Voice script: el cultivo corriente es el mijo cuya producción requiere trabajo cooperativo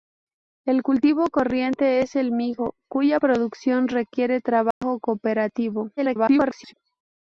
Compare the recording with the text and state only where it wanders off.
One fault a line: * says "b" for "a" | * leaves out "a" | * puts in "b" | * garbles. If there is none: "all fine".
* garbles